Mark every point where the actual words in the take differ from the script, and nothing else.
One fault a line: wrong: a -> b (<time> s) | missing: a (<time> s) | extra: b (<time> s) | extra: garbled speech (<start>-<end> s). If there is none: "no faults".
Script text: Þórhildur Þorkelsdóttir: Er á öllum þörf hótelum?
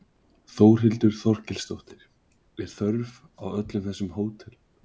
extra: þörf (2.8 s)
wrong: þörf -> þessum (3.9 s)